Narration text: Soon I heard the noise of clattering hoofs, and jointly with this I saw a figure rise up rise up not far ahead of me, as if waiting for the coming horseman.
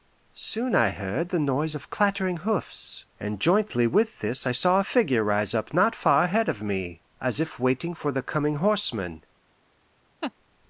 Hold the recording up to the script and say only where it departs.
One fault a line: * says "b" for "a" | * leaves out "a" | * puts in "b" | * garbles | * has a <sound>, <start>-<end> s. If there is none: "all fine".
* leaves out "rise up"
* has a laugh, 10.2-10.3 s